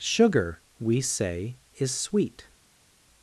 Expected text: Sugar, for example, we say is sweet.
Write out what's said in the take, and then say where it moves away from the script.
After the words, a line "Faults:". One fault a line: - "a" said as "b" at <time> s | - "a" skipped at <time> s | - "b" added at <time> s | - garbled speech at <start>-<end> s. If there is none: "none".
Sugar, we say is sweet.
Faults:
- "for example" skipped at 0.6 s